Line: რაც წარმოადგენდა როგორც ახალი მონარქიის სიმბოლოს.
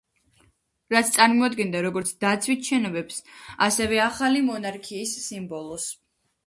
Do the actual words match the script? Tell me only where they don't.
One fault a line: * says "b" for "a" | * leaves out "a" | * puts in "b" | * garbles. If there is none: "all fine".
* puts in "დაცვით შენობებს ასევე"